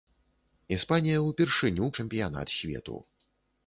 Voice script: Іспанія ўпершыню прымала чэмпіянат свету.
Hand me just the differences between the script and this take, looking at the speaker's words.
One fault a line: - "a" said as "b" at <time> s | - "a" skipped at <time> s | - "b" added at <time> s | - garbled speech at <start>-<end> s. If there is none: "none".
- "прымала" skipped at 1.9 s